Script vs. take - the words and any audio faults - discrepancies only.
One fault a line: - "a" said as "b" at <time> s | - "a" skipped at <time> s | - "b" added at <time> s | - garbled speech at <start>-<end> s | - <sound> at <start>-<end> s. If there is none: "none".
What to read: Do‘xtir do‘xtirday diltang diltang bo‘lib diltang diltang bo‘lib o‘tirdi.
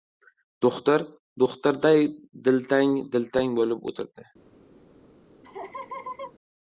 - "diltang diltang bo‘lib" skipped at 3.9 s
- laugh at 5.4-6.3 s